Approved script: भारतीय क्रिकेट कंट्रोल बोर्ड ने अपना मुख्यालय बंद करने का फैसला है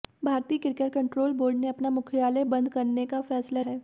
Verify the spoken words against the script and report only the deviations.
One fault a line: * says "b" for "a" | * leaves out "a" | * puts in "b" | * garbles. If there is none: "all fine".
all fine